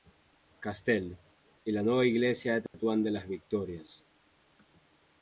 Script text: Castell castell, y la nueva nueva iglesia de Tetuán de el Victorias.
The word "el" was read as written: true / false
false